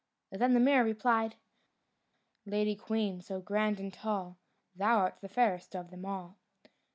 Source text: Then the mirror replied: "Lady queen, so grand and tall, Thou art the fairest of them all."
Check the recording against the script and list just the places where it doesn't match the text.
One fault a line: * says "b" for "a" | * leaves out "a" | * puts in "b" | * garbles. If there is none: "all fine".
all fine